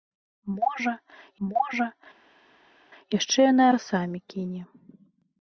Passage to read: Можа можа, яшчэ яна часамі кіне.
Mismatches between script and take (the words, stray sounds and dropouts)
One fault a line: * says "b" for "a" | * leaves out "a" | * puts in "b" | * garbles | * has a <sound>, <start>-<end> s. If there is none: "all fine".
all fine